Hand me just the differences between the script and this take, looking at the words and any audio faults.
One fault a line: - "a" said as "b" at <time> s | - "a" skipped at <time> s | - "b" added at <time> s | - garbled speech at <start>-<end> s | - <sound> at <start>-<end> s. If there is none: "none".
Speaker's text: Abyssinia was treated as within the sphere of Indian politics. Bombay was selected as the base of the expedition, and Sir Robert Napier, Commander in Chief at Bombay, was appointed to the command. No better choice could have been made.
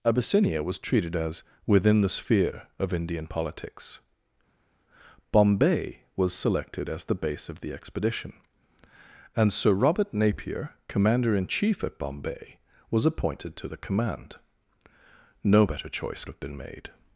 - "could" skipped at 16.2 s